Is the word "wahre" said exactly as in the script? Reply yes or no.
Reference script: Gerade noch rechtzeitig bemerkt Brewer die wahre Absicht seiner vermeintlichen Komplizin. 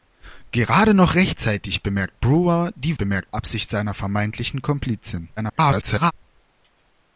no